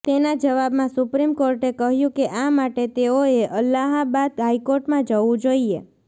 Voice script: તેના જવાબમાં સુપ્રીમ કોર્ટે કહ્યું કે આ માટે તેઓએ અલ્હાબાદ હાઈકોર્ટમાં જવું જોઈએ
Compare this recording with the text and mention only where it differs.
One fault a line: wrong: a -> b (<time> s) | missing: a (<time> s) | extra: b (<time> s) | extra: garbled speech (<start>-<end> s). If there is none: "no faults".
no faults